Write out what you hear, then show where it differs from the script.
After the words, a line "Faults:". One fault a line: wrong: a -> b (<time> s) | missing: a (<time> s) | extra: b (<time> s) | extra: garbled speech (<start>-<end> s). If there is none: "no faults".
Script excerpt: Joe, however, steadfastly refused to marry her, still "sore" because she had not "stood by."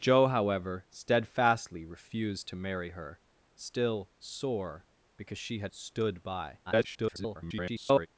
Joe, however, steadfastly refused to marry her, still "sore" because she had "stood by." [garbled]
Faults:
missing: not (5.7 s)
extra: garbled speech (6.7-8.1 s)